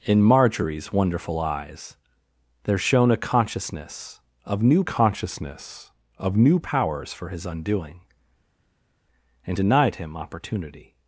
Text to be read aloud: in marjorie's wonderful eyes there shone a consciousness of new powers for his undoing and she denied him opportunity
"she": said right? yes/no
no